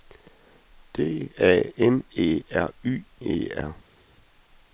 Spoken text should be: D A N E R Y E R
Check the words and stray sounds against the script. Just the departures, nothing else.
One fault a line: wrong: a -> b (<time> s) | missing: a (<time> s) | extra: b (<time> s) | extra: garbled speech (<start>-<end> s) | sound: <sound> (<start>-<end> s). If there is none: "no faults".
no faults